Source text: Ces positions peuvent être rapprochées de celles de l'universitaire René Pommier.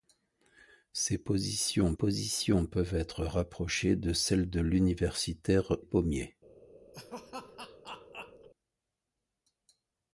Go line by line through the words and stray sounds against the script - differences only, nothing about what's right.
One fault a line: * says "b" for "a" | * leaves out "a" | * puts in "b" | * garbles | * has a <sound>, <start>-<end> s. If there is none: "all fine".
* puts in "positions"
* leaves out "René"
* has a laugh, 6.9-8.5 s